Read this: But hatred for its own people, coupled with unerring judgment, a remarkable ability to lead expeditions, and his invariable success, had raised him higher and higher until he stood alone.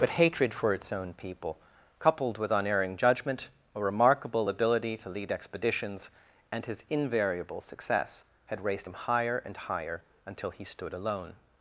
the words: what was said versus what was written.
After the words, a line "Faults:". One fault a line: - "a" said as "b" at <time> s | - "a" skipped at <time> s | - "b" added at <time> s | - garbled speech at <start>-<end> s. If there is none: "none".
But hatred for its own people, coupled with unerring judgment, a remarkable ability to lead expeditions, and his invariable success, had raised him higher and higher until he stood alone.
Faults:
none